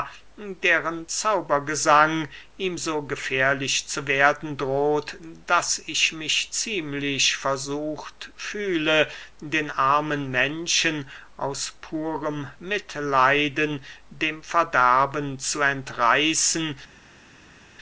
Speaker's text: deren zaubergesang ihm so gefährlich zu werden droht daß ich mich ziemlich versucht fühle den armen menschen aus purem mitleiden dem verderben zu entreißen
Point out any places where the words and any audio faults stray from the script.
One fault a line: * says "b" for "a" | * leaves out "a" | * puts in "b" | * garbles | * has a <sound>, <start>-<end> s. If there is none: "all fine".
all fine